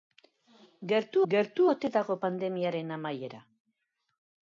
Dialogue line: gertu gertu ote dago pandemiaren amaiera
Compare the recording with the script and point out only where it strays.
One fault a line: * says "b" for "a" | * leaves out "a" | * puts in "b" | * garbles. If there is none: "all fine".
all fine